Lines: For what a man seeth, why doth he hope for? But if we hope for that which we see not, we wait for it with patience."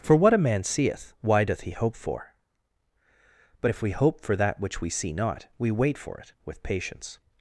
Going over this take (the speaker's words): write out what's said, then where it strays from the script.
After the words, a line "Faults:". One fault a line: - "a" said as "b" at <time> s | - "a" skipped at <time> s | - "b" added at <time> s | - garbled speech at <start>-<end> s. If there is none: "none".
For what a man seeth, why doth he hope for? But if we hope for that which we see not, we wait for it with patience."
Faults:
none